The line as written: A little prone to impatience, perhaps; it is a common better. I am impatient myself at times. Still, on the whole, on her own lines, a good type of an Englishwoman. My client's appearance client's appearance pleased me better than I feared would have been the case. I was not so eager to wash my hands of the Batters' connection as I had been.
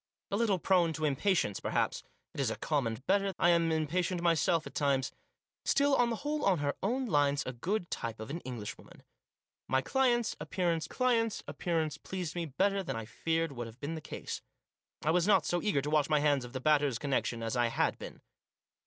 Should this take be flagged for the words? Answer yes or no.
no